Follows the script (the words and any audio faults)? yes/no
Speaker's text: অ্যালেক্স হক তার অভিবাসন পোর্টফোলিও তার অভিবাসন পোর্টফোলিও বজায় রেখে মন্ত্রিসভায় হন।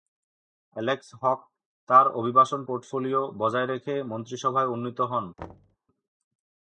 no